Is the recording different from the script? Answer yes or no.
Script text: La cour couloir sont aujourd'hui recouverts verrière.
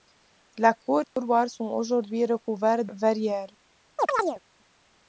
no